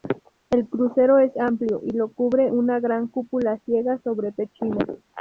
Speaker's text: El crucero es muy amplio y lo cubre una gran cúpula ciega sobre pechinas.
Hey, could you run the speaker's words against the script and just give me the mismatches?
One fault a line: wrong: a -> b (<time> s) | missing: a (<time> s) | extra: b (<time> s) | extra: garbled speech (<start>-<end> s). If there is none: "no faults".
missing: muy (1.4 s)